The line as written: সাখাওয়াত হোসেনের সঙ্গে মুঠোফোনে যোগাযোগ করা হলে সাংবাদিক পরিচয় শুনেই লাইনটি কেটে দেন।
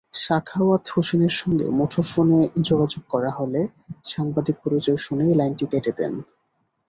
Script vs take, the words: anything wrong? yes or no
no